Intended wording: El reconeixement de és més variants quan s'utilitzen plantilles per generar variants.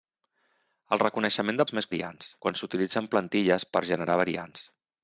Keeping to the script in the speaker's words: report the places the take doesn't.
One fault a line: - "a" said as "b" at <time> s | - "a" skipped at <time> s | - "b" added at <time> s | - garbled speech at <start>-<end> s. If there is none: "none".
none